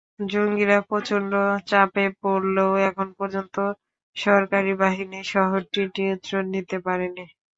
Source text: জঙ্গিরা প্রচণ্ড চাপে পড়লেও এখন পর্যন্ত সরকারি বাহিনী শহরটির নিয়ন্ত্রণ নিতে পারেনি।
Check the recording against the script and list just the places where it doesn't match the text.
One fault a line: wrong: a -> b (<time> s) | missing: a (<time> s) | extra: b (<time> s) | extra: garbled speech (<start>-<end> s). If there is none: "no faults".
no faults